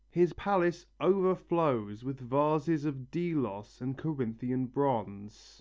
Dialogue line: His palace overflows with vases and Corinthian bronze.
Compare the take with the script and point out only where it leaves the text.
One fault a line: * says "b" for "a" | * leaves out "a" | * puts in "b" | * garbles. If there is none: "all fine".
* puts in "of Delos"